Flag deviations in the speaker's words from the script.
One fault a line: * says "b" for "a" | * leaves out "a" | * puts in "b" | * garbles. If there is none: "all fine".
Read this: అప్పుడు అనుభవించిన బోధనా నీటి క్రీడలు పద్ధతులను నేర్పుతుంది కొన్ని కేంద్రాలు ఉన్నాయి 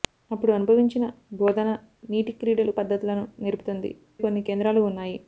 all fine